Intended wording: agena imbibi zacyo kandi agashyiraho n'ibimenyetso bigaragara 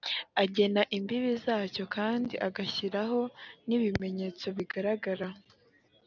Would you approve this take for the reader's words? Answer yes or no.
yes